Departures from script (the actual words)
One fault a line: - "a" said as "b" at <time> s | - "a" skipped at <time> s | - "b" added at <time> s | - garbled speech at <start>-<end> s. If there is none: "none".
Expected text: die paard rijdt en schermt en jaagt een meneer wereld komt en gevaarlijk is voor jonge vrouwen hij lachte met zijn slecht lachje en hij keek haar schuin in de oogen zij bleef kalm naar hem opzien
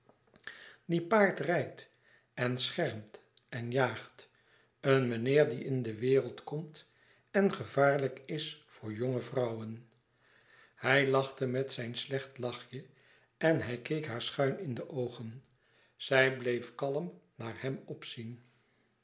- "die in de" added at 5.5 s